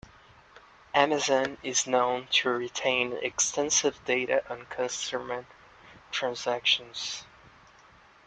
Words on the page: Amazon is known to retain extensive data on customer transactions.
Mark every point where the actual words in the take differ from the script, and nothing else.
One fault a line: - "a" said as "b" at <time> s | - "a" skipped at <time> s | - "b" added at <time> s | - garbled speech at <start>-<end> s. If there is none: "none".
none